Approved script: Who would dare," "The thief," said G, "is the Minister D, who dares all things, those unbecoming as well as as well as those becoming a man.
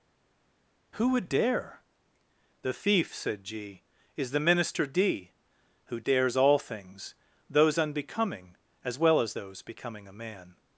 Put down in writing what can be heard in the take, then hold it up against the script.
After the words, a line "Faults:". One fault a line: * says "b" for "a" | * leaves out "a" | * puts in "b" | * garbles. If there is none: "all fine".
Who would dare," "The thief," said G, "is the Minister D, who dares all things, those unbecoming as well as those becoming a man.
Faults:
* leaves out "as well as"